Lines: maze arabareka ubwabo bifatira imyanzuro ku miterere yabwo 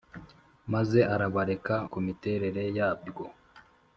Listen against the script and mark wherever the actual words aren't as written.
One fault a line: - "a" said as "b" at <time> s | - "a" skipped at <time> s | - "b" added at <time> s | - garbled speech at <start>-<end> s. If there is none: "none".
- "ubwabo bifatira imyanzuro" skipped at 1.8 s